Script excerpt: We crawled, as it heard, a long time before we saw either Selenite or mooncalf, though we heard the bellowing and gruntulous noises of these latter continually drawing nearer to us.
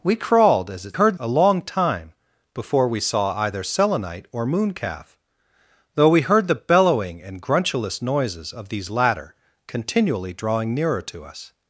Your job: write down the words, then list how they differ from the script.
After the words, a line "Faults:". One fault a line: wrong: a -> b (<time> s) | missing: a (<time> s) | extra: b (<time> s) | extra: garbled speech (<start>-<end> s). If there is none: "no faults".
We crawled, as it heard, a long time before we saw either Selenite or mooncalf, though we heard the bellowing and gruntulous noises of these latter continually drawing nearer to us.
Faults:
no faults